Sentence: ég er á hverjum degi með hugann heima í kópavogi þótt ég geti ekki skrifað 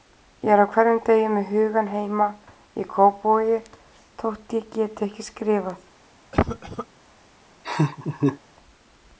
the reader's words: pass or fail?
pass